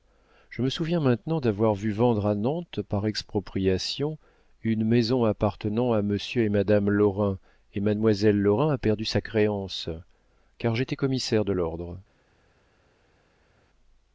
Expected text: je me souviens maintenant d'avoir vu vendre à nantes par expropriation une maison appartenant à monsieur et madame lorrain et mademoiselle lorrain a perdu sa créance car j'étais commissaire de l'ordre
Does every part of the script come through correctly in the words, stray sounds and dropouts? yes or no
yes